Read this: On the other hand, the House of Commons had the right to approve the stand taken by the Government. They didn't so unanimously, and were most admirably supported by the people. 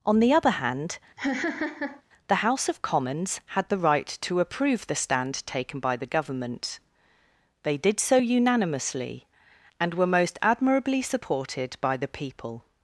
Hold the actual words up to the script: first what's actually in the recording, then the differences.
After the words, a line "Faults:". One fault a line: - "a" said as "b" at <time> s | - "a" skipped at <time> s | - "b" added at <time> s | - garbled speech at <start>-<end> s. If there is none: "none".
On the other hand, the House of Commons had the right to approve the stand taken by the Government. They did so unanimously, and were most admirably supported by the people.
Faults:
- "didn't" said as "did" at 7.8 s